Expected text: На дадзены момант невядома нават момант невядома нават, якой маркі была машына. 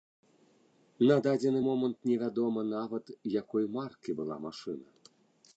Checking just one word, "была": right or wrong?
right